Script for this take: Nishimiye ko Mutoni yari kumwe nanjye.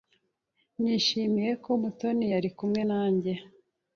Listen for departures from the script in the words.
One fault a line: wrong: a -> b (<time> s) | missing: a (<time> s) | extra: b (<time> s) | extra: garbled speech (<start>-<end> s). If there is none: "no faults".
no faults